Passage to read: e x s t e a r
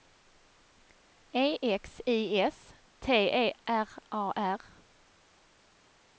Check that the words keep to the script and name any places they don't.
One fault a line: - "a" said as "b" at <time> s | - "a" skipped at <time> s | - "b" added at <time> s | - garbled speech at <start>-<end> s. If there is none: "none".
- "i" added at 2.1 s
- "r" added at 3.7 s